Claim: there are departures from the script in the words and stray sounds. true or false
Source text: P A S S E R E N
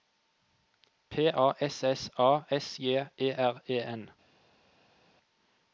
true